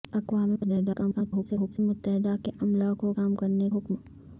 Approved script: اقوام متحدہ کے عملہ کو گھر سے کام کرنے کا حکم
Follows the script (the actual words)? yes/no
no